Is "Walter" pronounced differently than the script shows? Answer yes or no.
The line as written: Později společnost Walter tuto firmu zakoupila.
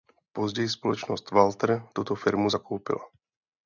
no